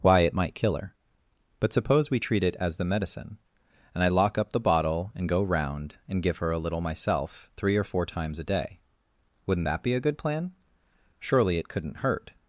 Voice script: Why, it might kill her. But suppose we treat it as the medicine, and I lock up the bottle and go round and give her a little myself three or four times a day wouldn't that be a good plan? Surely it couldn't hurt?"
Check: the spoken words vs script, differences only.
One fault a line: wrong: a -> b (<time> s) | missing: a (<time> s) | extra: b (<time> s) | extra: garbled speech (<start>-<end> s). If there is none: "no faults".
no faults